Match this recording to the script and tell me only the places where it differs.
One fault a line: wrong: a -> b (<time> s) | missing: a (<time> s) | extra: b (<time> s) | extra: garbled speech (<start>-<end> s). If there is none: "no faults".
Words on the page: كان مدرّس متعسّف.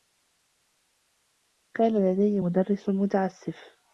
extra: لديّ (2.1 s)